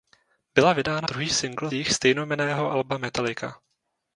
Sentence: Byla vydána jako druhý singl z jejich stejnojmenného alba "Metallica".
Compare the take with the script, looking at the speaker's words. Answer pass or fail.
fail